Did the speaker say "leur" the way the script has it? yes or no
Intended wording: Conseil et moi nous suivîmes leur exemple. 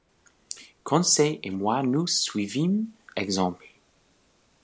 no